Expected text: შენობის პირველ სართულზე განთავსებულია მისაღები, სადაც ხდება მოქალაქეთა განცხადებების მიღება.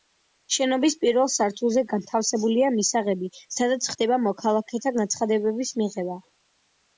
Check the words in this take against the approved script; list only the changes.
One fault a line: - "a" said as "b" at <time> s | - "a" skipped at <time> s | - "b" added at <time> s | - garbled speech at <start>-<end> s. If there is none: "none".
none